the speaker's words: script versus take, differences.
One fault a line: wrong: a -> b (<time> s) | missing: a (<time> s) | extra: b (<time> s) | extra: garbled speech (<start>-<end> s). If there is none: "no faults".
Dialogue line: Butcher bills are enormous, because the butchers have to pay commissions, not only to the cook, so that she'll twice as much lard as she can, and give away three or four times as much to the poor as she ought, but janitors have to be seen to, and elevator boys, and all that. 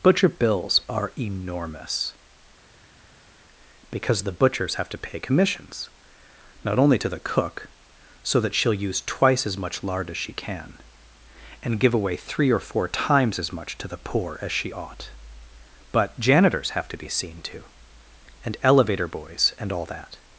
extra: use (8.7 s)